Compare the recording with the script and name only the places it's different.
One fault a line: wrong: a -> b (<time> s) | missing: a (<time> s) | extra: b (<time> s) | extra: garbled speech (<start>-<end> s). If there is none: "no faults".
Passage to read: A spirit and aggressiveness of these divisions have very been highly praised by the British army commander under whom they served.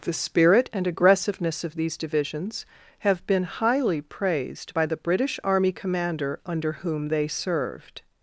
wrong: A -> The (0.0 s)
missing: very (3.3 s)